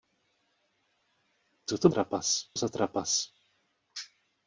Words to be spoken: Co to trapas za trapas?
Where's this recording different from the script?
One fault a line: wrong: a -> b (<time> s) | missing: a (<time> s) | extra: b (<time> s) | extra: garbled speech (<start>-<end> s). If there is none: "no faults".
no faults